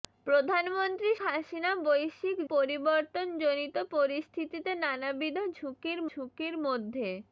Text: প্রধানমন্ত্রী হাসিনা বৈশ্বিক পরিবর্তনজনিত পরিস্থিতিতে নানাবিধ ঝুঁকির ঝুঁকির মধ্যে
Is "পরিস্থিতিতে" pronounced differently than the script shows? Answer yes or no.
no